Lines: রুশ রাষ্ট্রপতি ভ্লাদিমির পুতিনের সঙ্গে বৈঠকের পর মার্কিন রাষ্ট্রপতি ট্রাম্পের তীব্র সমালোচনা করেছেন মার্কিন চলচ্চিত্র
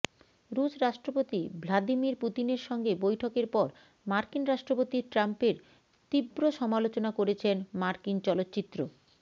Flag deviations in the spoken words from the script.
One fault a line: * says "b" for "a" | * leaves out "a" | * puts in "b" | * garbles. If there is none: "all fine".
all fine